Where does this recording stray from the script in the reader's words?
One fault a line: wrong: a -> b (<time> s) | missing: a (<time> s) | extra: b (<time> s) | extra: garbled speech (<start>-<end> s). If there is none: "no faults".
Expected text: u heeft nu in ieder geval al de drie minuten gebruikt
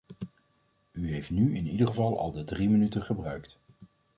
no faults